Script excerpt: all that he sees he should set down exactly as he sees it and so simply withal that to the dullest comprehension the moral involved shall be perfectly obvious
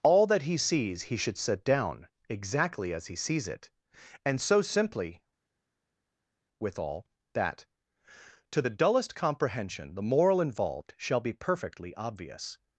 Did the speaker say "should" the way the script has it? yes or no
yes